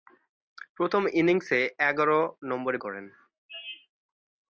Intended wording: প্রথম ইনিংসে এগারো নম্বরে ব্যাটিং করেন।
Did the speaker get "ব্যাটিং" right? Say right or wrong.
wrong